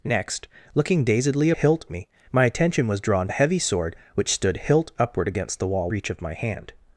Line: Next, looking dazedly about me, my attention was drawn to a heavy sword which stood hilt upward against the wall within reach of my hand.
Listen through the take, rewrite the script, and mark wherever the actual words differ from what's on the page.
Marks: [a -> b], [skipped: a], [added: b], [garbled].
Next, looking dazedly [about -> hilt] me, my attention was drawn [skipped: to] a heavy sword which stood hilt upward against the wall [skipped: within] reach of my hand.